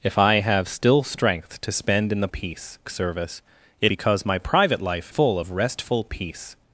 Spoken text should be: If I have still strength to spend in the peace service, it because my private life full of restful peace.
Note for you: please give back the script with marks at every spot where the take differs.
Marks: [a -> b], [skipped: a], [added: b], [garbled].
If I have still strength to spend in the peace service, it because my private life full of restful peace.